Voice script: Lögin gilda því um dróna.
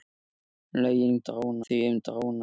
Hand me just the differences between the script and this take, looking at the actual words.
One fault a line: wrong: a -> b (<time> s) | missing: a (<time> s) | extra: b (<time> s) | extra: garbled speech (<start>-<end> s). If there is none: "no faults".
wrong: gilda -> dróna (1.3 s)